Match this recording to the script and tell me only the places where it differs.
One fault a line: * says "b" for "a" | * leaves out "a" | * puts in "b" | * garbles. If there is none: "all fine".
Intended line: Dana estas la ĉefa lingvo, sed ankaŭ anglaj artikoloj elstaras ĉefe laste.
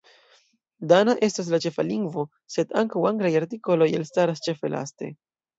all fine